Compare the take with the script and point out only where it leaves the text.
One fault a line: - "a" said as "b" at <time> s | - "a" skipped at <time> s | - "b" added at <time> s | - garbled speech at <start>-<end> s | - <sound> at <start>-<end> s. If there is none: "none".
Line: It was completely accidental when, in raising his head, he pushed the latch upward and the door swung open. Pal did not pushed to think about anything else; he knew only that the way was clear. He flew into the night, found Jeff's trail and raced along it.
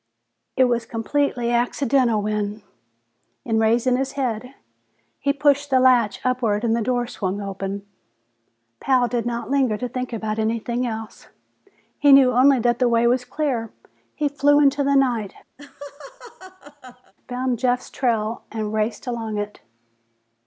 - "pushed" said as "linger" at 9.5 s
- laugh at 15.6-17.1 s